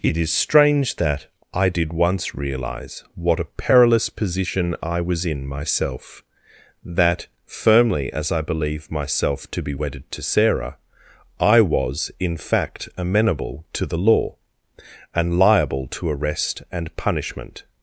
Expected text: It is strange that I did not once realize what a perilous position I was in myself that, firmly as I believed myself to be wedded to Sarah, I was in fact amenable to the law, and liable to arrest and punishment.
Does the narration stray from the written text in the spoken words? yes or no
yes